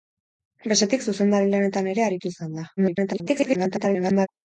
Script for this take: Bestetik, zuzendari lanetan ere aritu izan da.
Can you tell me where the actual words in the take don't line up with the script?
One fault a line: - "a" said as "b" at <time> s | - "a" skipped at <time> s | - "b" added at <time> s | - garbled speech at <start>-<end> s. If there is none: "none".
- garbled speech at 2.8-4.3 s